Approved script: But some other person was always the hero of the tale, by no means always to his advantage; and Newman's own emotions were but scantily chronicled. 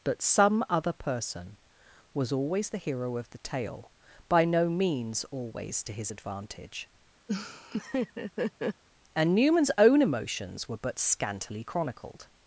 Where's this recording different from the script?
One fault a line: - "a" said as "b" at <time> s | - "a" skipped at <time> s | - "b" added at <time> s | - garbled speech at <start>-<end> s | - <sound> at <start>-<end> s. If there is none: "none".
- laugh at 7.3-8.8 s